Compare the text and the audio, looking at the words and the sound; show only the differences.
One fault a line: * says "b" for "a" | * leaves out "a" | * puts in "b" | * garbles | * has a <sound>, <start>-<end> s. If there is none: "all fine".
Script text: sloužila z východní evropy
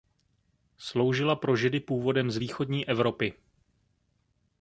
* puts in "pro židy původem"